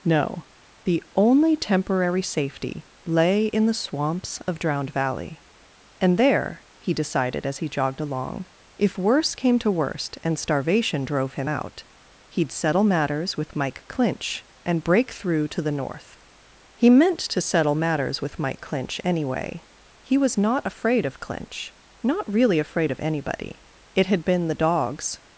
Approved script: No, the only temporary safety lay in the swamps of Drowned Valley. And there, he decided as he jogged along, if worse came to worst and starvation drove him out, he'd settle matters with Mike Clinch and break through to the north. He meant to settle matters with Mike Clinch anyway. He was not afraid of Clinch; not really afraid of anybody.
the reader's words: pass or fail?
fail